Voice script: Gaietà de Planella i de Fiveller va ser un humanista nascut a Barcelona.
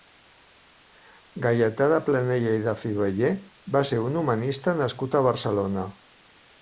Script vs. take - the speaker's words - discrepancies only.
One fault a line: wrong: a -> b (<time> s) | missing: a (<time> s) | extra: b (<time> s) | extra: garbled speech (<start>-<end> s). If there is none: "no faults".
no faults